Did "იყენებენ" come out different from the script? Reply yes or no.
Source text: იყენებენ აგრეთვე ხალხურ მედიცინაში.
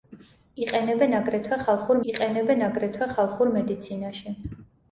no